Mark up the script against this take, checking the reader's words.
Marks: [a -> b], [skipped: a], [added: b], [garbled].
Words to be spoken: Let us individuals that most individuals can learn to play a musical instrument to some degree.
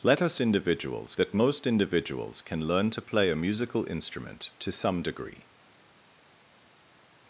Let us individuals that most individuals can learn to play a musical instrument to some degree.